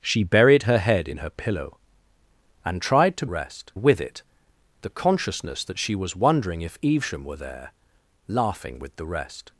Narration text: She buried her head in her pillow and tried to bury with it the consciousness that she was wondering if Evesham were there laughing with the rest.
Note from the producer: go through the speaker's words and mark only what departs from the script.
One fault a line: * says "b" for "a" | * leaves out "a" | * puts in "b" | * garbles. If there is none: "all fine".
* says "rest" for "bury"